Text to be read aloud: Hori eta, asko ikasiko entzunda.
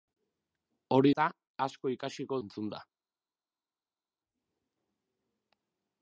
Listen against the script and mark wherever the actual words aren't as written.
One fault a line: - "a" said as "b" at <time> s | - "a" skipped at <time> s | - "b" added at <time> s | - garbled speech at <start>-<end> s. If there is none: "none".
none